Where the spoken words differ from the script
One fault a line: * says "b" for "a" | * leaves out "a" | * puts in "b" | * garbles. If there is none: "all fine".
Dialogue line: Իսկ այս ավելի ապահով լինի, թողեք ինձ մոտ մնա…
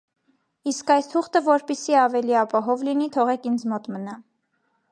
* puts in "թուղթը որպեսզի"